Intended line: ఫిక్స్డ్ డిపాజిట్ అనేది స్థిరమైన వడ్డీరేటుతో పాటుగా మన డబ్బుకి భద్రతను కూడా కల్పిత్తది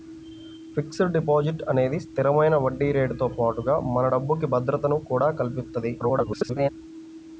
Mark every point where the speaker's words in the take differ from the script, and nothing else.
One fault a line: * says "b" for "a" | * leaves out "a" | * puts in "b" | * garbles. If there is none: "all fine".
* garbles